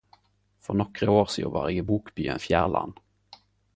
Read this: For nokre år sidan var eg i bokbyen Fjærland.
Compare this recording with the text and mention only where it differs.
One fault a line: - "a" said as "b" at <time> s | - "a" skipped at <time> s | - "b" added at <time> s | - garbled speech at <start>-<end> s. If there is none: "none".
none